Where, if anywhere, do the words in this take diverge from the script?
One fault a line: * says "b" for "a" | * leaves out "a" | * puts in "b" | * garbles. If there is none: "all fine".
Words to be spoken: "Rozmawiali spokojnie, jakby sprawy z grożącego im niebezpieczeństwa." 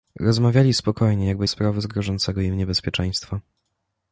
all fine